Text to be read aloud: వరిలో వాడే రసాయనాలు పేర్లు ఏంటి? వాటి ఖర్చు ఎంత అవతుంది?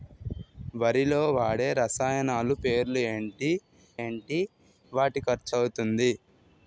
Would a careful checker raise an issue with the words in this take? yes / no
yes